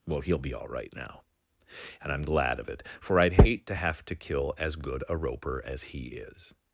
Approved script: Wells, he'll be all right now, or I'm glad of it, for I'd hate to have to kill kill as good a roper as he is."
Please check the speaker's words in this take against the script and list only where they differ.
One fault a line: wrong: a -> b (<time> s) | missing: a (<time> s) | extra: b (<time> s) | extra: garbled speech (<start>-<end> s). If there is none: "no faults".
wrong: Wells -> Well (0.1 s)
wrong: or -> and (2.0 s)
missing: kill (4.5 s)